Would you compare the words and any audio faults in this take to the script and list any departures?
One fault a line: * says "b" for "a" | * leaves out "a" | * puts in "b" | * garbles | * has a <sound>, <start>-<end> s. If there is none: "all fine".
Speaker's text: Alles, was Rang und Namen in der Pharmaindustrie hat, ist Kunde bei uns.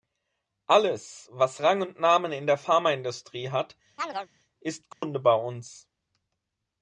* has a chirp, 4.0-4.3 s
* has a dropout, 4.9-5.0 s